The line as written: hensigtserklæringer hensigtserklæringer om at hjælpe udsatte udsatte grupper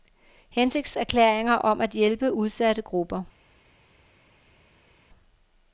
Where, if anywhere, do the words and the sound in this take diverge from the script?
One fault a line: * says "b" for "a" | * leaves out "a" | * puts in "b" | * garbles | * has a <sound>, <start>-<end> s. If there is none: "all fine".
* leaves out "hensigtserklæringer"
* leaves out "udsatte"